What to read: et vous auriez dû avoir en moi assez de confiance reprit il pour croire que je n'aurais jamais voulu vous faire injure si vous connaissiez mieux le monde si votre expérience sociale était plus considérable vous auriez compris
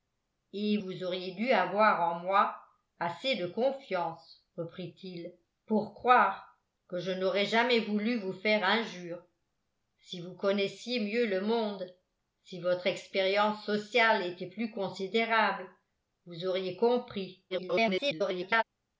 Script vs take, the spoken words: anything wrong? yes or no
yes